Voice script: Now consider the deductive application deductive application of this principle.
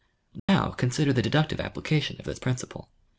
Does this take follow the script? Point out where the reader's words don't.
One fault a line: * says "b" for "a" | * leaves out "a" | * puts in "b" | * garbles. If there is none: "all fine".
* leaves out "deductive application"